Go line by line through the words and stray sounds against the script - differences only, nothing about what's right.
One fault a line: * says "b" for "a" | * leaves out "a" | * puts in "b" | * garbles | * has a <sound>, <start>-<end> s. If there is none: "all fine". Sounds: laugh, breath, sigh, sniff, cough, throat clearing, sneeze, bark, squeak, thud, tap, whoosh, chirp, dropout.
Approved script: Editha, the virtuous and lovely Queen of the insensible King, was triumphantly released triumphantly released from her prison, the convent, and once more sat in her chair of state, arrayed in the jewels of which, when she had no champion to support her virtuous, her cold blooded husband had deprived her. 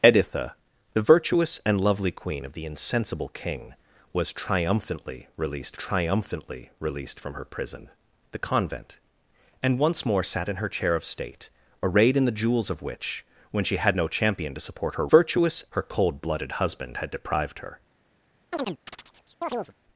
* has a chirp, 18.5-19.7 s